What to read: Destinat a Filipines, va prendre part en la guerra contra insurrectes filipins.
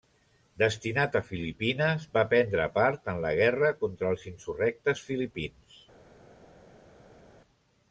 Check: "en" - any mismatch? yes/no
no